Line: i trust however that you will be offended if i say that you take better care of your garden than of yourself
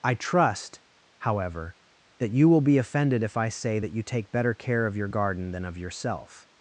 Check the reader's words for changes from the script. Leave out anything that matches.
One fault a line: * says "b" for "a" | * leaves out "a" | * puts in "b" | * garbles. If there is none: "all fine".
all fine